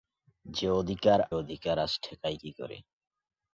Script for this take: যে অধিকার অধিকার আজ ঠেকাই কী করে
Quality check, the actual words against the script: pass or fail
pass